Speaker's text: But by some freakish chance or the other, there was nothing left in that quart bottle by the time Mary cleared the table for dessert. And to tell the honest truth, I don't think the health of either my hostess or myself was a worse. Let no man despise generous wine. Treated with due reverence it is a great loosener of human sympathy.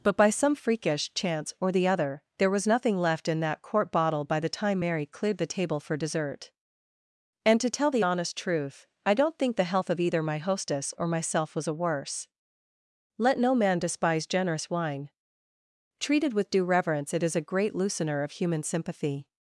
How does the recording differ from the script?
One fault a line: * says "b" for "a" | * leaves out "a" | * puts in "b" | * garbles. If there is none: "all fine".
all fine